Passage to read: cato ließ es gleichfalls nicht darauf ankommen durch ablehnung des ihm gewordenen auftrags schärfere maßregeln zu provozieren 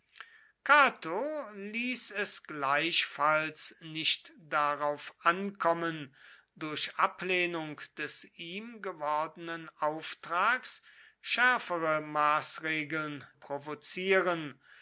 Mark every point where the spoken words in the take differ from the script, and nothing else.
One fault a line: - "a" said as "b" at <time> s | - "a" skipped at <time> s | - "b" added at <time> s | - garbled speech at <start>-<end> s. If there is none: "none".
- "zu" skipped at 13.3 s